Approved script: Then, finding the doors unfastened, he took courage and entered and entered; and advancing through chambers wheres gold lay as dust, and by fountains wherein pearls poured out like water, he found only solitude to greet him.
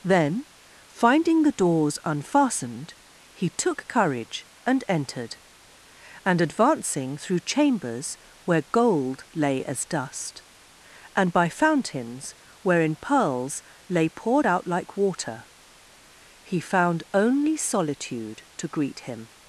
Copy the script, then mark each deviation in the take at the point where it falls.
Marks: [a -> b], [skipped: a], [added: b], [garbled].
Then, finding the doors unfastened, he took courage and entered and [skipped: entered; and] advancing through chambers [wheres -> where] gold lay as dust, and by fountains wherein pearls [added: lay] poured out like water, he found only solitude to greet him.